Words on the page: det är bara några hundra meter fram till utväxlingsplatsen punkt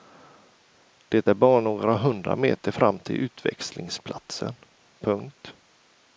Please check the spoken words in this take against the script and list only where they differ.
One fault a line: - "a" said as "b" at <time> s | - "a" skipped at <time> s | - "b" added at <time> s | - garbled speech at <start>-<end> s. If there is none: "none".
none